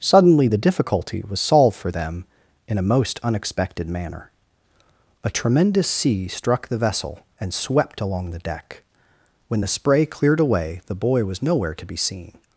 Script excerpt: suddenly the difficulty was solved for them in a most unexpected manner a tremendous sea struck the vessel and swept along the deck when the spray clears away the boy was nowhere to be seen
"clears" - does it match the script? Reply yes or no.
no